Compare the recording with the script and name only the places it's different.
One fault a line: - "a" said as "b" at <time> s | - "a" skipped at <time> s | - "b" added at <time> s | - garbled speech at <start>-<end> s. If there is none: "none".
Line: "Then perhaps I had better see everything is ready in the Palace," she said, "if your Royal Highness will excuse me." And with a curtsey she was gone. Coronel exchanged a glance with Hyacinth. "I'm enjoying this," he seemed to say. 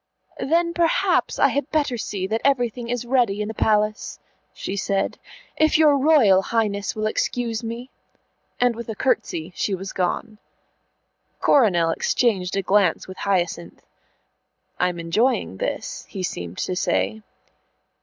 - "that" added at 2.3 s